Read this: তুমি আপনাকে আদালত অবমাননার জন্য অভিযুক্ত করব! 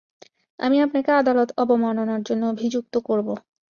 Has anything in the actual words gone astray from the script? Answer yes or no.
yes